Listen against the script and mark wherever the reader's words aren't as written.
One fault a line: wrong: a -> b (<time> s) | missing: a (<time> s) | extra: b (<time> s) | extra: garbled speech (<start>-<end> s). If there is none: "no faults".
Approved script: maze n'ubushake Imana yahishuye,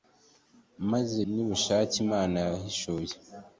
no faults